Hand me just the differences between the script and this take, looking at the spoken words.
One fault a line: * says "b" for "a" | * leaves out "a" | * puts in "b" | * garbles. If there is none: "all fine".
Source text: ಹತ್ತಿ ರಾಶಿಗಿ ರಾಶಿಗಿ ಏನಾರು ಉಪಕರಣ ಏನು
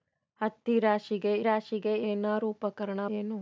all fine